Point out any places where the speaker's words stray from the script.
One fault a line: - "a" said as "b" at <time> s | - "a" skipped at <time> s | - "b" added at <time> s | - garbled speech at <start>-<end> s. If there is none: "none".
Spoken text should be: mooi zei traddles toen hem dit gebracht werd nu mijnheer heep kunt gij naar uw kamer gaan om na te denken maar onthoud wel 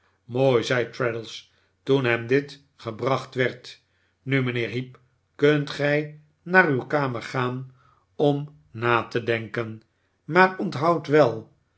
none